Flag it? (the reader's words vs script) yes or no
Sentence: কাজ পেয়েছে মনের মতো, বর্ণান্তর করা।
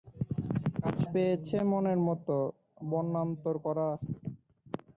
no